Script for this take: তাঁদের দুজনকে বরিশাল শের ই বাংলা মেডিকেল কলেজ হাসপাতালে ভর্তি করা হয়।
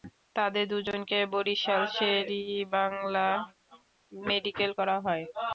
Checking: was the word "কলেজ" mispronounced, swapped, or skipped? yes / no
yes